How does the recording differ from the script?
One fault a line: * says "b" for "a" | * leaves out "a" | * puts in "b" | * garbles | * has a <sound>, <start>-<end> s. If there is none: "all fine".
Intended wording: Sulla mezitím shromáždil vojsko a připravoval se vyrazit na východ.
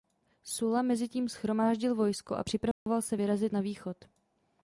* has a dropout, 2.7-2.9 s